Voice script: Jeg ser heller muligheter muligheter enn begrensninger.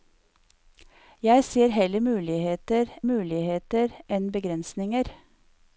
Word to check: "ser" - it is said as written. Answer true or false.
true